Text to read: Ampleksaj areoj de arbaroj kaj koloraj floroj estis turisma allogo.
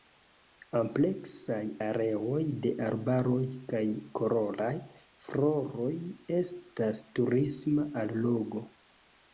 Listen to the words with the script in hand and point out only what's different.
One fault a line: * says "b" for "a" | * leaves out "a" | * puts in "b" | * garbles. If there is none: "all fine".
* says "estas" for "estis"